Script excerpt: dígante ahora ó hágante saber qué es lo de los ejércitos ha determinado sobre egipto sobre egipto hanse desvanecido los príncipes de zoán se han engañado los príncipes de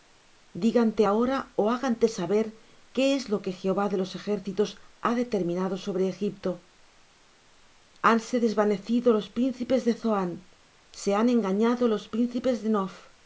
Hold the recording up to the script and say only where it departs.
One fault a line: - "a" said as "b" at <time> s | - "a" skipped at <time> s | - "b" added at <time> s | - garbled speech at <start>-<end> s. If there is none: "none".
- "que jehová" added at 3.4 s
- "sobre egipto" skipped at 6.5 s